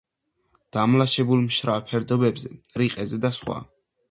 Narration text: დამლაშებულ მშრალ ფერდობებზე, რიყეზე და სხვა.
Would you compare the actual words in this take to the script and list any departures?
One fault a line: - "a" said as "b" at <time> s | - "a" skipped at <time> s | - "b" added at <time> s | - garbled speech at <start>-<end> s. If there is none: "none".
none